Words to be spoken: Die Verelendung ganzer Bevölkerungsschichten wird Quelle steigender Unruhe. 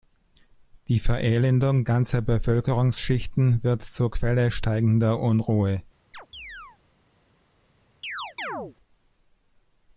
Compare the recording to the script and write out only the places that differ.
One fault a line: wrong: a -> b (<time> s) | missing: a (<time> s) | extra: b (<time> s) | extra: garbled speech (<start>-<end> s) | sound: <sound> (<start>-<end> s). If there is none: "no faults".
extra: zur (3.8 s)
sound: chirp (6.1-6.8 s)
sound: chirp (8.0-8.8 s)